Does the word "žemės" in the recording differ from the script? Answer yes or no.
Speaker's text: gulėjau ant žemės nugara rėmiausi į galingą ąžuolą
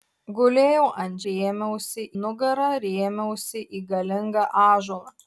yes